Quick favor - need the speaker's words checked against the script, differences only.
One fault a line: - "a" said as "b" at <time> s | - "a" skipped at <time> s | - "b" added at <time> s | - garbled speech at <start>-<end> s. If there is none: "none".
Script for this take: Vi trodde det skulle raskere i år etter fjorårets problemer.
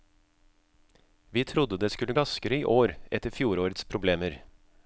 none